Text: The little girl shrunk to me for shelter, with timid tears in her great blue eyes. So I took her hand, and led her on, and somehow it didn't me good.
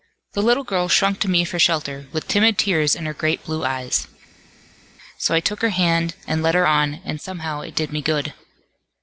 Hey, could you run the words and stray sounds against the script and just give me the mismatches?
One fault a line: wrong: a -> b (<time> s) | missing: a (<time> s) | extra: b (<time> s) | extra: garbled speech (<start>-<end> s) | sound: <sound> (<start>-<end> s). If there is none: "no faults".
wrong: didn't -> did (7.7 s)